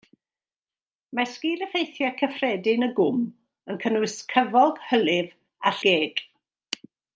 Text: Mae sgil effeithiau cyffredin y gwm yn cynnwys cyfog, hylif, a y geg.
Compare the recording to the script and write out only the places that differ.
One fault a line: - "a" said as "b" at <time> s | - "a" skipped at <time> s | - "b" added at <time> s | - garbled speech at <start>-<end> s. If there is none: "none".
none